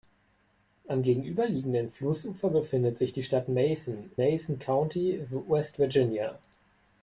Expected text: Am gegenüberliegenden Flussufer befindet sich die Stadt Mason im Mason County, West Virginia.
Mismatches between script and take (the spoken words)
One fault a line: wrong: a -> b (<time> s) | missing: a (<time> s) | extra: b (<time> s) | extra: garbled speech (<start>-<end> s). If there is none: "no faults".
missing: im (4.1 s)